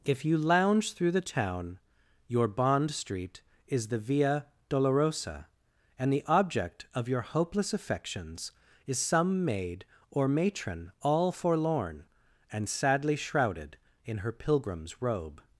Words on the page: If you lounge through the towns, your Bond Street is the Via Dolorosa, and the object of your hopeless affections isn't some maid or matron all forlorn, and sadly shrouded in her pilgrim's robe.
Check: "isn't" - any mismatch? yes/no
yes